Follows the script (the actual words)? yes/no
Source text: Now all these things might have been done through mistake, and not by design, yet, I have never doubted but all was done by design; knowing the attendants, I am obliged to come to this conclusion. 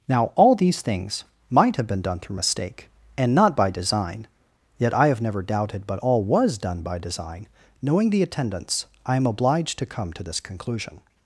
yes